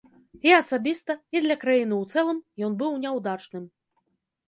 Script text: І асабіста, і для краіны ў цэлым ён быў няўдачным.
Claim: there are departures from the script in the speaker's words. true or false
false